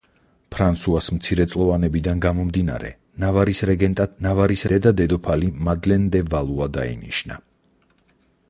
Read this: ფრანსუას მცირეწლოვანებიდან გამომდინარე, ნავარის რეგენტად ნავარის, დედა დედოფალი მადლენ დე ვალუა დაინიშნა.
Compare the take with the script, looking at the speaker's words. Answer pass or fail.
pass